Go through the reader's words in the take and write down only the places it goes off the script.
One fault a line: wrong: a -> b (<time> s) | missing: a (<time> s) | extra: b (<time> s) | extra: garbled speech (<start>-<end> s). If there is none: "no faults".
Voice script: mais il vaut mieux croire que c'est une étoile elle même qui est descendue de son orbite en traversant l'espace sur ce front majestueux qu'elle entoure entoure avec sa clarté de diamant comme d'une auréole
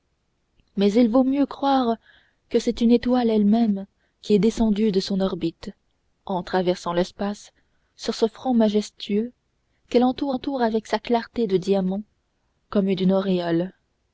no faults